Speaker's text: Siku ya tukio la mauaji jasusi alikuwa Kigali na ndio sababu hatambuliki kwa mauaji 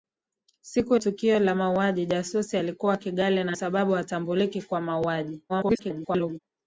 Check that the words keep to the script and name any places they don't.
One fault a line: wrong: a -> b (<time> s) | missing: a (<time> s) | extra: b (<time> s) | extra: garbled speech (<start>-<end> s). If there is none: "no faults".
missing: ya (0.9 s)
missing: ndio (3.6 s)
extra: garbled speech (5.5-6.4 s)